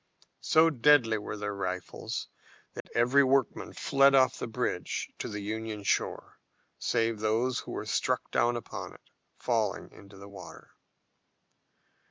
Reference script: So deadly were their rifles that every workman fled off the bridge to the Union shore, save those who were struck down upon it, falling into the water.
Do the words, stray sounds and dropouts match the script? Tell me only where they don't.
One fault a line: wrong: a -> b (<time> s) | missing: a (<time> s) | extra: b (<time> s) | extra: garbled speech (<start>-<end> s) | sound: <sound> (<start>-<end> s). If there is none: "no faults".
sound: dropout (2.8-2.9 s)